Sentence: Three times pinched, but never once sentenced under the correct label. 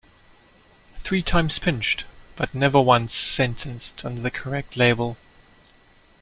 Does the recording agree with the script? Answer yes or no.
yes